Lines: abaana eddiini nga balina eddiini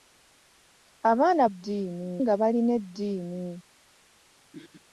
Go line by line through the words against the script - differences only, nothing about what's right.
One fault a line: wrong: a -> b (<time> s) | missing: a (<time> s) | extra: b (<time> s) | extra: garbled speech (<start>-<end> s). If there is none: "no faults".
no faults